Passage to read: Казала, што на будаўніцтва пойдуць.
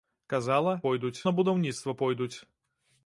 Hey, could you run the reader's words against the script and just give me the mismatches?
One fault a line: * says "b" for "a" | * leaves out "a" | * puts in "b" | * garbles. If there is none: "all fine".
* says "пойдуць" for "што"